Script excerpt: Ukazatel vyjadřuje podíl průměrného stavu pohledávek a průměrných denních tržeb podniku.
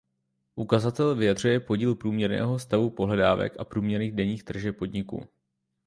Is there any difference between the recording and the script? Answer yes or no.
no